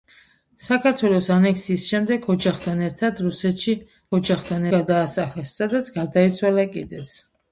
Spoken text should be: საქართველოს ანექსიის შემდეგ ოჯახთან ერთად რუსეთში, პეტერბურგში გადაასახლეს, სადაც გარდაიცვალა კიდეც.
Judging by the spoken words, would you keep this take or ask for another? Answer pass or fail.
fail